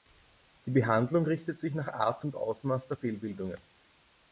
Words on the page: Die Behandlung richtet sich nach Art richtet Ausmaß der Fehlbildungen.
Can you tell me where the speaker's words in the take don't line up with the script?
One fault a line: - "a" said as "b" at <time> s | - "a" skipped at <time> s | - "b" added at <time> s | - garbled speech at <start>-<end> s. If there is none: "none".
- "richtet" said as "und" at 2.2 s